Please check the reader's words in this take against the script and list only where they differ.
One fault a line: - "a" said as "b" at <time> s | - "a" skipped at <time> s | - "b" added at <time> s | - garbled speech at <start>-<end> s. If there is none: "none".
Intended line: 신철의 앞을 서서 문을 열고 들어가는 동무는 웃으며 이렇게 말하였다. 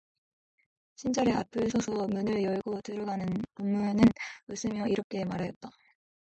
none